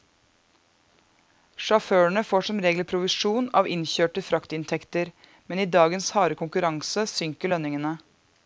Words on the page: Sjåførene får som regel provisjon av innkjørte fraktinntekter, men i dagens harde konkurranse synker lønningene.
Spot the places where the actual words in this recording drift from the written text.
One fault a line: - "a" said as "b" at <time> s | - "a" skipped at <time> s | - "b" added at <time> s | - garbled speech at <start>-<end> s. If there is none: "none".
none